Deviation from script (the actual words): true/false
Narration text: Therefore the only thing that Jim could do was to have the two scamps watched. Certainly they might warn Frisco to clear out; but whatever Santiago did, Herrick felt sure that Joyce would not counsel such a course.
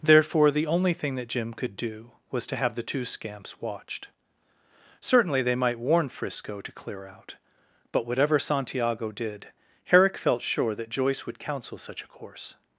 true